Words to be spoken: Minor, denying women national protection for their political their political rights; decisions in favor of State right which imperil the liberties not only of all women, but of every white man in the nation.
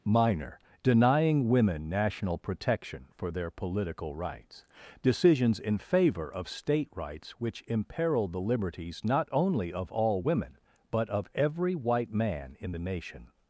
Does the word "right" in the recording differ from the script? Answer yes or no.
yes